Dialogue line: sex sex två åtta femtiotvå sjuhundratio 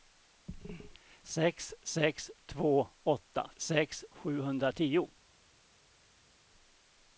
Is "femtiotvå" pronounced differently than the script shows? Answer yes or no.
yes